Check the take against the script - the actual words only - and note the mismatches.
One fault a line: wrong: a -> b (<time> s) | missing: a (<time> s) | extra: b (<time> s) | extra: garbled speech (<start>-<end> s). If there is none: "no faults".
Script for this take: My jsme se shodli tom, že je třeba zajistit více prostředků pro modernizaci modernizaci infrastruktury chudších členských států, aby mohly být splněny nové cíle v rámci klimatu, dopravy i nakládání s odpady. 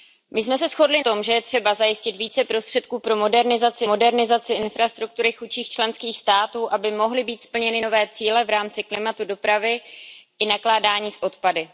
no faults